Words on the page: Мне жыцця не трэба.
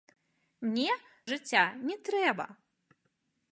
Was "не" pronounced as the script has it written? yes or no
yes